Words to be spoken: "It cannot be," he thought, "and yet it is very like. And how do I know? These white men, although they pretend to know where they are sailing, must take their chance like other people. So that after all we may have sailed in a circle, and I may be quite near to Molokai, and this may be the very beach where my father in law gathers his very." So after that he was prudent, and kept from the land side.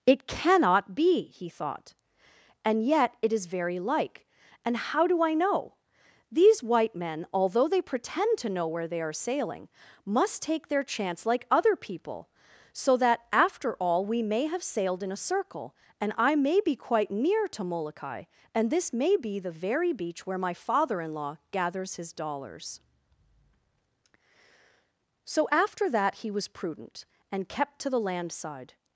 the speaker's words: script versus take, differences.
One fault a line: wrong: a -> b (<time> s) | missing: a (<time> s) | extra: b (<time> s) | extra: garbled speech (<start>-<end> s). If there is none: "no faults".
wrong: very -> dollars (22.1 s)
wrong: from -> to (27.8 s)